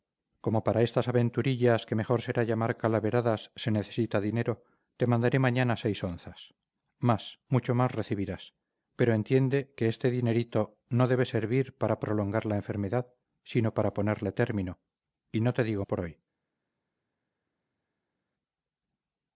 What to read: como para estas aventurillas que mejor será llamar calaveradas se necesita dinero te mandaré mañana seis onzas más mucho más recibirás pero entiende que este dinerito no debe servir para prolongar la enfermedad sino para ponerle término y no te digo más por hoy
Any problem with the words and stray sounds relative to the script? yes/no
yes